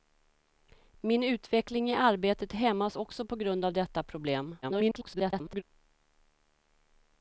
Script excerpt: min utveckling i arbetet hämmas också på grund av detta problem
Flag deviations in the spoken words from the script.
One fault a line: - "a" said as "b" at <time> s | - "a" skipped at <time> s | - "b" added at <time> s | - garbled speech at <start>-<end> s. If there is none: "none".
- garbled speech at 4.6-5.6 s